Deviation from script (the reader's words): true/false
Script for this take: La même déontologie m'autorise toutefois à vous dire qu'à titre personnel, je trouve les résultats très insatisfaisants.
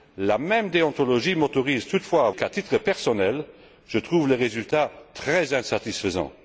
true